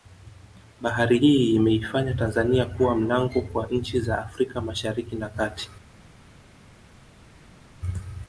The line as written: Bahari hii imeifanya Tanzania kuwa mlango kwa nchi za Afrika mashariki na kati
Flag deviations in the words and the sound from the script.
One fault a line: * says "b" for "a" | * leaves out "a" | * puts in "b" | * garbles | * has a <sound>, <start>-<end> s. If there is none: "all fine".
all fine